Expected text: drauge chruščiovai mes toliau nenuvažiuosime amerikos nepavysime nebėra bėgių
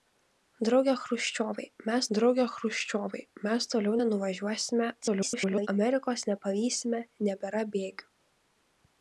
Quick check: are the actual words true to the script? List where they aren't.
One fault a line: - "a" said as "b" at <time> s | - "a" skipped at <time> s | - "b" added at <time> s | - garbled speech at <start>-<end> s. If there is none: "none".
- "drauge chruščiovai mes" added at 2.2 s
- garbled speech at 5.0-5.7 s